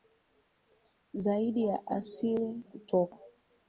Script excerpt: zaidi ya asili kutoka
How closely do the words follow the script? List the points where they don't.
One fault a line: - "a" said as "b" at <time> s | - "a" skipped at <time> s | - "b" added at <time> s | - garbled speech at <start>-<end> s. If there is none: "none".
none